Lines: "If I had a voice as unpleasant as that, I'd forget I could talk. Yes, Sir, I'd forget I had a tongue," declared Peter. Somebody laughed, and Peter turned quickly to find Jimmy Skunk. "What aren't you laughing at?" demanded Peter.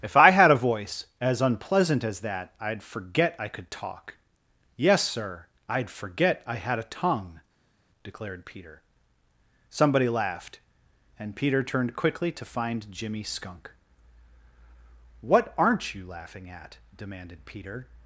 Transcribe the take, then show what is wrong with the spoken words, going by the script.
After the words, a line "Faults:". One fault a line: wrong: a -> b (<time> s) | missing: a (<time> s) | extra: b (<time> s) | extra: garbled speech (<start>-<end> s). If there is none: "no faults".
"If I had a voice as unpleasant as that, I'd forget I could talk. Yes, Sir, I'd forget I had a tongue," declared Peter. Somebody laughed, and Peter turned quickly to find Jimmy Skunk. "What aren't you laughing at?" demanded Peter.
Faults:
no faults